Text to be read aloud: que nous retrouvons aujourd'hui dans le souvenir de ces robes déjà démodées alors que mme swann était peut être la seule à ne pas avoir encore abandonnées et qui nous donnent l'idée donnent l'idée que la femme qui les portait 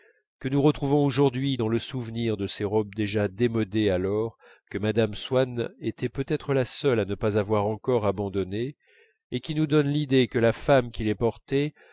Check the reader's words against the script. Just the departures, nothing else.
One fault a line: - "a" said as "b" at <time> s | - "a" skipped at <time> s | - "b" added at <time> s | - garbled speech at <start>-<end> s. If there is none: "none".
- "donnent l'idée" skipped at 10.3 s